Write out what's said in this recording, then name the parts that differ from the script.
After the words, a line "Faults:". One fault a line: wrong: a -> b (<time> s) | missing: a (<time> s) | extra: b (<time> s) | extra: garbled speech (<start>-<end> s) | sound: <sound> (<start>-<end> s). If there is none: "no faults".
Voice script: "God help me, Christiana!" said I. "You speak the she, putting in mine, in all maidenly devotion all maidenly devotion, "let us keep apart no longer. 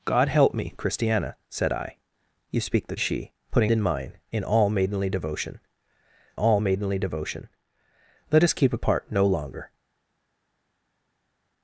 "God help me, Christiana!" said I. "You speak the she, putting in mine, in all maidenly devotion all maidenly devotion, "let us keep apart no longer.
Faults:
no faults